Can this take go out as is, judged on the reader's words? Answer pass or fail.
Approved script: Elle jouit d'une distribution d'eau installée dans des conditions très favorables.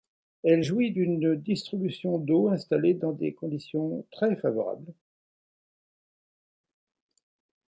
pass